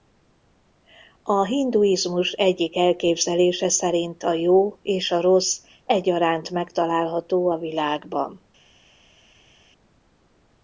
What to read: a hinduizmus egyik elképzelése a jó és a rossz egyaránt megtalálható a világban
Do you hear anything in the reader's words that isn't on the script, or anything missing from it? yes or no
yes